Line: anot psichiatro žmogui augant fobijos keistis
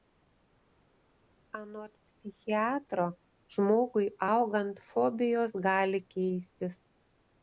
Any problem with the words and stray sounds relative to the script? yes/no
yes